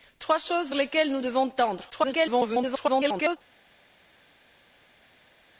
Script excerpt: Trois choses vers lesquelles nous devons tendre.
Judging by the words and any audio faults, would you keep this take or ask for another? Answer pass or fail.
fail